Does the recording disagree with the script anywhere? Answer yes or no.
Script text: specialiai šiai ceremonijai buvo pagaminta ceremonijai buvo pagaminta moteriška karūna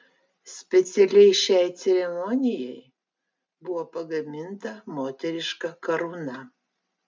yes